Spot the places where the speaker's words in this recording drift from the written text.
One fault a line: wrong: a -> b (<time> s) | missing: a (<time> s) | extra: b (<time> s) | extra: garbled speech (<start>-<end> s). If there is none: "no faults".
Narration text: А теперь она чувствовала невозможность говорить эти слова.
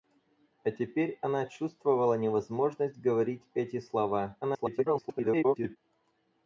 extra: garbled speech (4.4-5.8 s)